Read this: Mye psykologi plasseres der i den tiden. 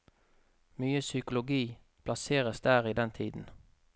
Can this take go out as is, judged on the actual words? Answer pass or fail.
pass